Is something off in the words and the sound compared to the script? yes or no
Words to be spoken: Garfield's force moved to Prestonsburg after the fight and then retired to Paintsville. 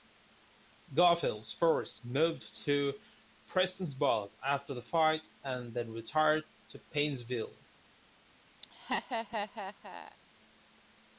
yes